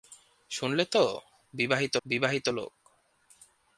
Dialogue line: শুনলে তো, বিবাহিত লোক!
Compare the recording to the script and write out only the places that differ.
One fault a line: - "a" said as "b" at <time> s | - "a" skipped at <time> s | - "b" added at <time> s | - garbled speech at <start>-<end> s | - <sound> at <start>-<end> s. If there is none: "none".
- "বিবাহিত" added at 2.0 s